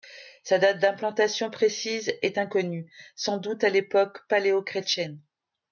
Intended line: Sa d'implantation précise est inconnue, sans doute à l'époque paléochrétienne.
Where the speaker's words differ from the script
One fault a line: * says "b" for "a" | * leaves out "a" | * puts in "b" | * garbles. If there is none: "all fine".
* puts in "date"